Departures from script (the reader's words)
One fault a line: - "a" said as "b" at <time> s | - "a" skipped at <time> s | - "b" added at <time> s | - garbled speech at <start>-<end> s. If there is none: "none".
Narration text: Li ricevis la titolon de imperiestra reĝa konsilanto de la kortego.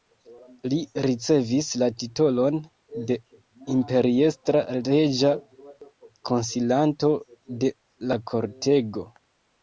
none